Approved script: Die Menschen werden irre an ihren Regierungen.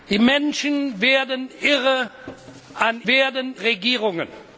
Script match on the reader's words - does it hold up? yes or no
no